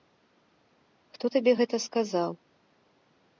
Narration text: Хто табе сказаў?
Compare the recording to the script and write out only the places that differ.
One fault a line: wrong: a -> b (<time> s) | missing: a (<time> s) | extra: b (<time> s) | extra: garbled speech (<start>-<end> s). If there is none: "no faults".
extra: гэта (1.6 s)